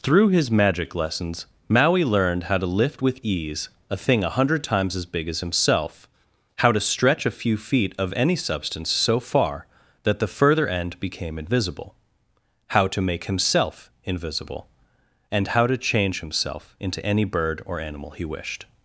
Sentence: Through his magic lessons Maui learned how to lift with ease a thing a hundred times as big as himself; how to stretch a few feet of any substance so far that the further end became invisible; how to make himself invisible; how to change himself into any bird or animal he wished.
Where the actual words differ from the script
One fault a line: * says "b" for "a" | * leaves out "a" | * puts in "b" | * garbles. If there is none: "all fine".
* puts in "and"